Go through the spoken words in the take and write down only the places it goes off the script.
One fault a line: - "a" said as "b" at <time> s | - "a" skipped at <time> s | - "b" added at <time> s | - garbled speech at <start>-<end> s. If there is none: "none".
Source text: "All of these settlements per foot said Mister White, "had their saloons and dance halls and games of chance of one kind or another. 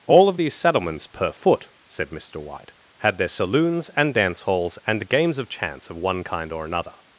none